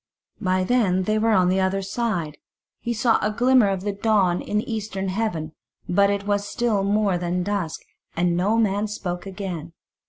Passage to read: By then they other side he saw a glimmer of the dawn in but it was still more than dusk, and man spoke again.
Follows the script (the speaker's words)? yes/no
no